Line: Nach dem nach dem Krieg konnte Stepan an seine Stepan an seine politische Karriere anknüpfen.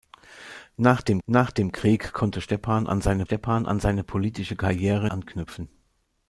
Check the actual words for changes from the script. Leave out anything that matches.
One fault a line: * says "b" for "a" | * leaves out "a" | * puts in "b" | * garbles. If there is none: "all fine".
all fine